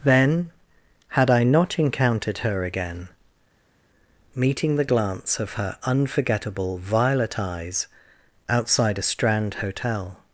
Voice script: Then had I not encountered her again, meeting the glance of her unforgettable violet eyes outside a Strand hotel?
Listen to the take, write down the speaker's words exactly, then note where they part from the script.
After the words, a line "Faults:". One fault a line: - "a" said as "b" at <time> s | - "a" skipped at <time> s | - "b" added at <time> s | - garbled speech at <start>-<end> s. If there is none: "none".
Then had I not encountered her again, meeting the glance of her unforgettable violet eyes outside a Strand hotel?
Faults:
none